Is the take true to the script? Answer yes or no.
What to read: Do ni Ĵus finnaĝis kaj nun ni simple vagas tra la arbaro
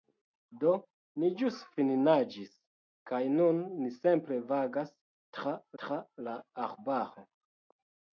no